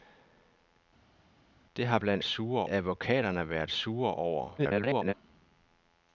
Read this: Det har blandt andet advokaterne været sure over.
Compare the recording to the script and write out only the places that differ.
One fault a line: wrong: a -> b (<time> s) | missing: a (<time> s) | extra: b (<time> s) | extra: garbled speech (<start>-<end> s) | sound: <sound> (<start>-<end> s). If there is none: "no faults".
wrong: andet -> sure (2.2 s)
extra: garbled speech (4.6-5.1 s)